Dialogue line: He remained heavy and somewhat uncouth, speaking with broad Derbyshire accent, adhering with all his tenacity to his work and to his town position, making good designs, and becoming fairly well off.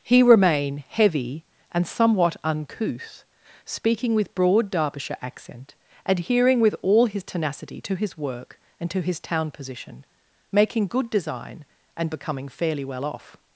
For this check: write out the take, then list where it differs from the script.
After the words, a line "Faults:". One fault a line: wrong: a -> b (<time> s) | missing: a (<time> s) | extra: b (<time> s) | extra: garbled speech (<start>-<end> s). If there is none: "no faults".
He remain heavy and somewhat uncouth, speaking with broad Derbyshire accent, adhering with all his tenacity to his work and to his town position, making good design, and becoming fairly well off.
Faults:
wrong: remained -> remain (0.2 s)
wrong: designs -> design (11.1 s)